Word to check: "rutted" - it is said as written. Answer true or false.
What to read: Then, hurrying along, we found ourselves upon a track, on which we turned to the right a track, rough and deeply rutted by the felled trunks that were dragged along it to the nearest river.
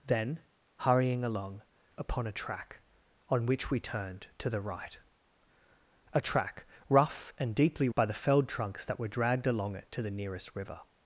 false